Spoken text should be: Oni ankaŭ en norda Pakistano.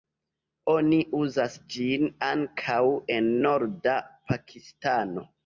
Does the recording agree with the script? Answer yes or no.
no